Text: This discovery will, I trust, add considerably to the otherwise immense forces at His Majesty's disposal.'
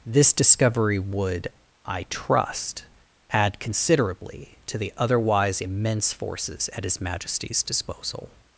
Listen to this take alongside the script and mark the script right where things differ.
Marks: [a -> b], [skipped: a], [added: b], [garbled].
This discovery [will, -> would] I trust, add considerably to the otherwise immense forces at His Majesty's disposal.'